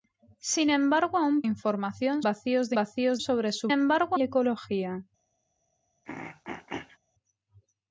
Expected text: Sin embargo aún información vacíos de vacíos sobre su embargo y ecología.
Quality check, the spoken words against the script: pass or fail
pass